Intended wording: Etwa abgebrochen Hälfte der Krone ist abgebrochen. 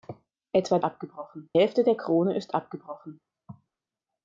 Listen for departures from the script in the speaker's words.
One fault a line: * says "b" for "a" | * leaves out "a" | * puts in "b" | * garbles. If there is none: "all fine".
all fine